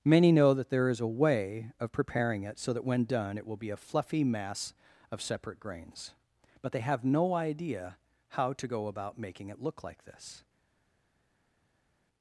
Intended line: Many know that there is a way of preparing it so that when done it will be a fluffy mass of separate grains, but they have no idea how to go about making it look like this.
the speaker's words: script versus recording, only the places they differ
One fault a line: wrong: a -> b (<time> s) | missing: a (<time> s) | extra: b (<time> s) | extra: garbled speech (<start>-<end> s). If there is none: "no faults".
no faults